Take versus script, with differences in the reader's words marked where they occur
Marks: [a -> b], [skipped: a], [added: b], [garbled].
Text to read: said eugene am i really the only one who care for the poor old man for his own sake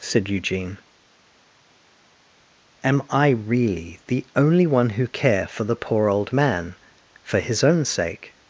said eugene am i really the only one who care for the poor old man for his own sake